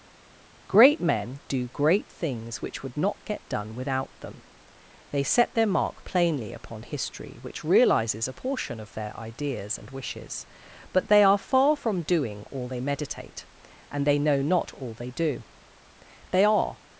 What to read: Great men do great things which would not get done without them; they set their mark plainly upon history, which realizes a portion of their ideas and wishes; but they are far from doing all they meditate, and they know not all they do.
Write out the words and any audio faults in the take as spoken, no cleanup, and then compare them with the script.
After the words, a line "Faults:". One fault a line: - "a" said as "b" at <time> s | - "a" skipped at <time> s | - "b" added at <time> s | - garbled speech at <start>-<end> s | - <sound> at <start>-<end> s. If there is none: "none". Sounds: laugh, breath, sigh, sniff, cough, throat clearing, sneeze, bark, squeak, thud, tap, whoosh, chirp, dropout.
Great men do great things which would not get done without them; they set their mark plainly upon history, which realizes a portion of their ideas and wishes; but they are far from doing all they meditate, and they know not all they do. They are
Faults:
- "They are" added at 16.3 s